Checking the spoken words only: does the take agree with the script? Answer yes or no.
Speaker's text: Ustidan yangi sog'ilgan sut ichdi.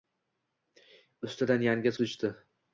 no